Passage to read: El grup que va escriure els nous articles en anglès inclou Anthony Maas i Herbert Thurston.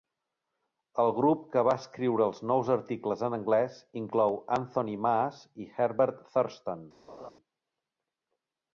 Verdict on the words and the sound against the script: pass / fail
fail